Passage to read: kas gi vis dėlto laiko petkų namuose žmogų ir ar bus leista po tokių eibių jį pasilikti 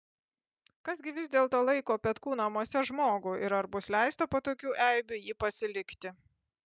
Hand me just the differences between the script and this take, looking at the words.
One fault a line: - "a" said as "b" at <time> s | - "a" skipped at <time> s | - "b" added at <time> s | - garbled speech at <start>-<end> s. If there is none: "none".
none